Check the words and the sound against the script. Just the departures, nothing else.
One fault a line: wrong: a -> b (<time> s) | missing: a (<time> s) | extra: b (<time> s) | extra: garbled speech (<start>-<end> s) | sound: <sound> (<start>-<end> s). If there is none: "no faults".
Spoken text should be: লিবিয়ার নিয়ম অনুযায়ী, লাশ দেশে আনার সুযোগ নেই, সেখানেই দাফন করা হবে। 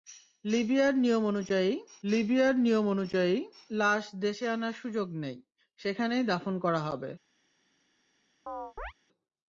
extra: লিবিয়ার নিয়ম অনুযায়ী (2.0 s)
sound: chirp (8.5-8.9 s)